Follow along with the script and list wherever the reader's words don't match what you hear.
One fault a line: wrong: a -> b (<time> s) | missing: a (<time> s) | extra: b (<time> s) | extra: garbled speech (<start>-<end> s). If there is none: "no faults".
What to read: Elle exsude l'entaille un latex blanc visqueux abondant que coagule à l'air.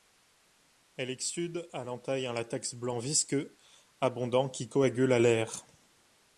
extra: à (1.7 s)
wrong: que -> qui (4.5 s)